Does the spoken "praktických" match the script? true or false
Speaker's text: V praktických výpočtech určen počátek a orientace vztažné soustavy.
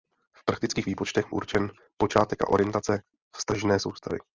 true